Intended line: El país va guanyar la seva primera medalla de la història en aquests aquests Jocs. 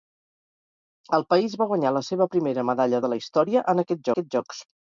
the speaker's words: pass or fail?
pass